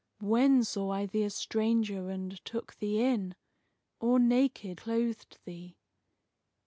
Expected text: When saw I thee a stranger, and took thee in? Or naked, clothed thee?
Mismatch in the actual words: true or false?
false